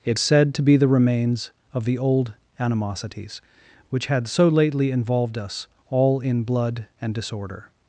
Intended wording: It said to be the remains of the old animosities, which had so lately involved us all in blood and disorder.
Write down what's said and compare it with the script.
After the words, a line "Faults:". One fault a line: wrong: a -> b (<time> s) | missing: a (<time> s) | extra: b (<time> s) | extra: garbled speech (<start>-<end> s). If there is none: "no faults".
It said to be the remains of the old animosities, which had so lately involved us all in blood and disorder.
Faults:
no faults